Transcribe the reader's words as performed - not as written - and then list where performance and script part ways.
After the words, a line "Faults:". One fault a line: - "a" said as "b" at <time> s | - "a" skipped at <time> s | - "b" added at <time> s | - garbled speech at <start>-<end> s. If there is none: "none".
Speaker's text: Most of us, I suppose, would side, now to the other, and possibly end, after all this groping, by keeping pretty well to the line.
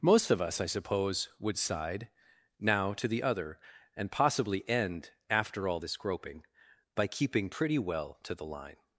Most of us, I suppose, would side, now to the other, and possibly end, after all this groping, by keeping pretty well to the line.
Faults:
none